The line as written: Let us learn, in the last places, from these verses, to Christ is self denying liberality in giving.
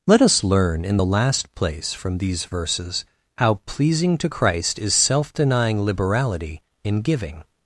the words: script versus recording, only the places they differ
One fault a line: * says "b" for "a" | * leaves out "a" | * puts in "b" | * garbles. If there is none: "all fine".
* says "place" for "places"
* puts in "how pleasing"